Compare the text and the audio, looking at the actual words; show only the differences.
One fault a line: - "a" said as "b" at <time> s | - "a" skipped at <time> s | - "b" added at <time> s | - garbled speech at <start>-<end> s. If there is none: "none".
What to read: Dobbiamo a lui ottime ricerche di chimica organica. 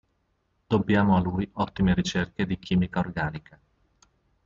none